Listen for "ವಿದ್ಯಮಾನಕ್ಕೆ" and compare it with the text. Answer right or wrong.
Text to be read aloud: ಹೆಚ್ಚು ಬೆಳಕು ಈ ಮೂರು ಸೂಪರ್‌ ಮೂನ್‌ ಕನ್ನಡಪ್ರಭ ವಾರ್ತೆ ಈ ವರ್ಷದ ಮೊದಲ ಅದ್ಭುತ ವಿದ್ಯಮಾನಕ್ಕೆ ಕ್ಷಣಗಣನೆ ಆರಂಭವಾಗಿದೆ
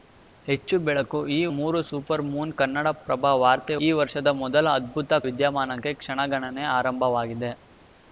right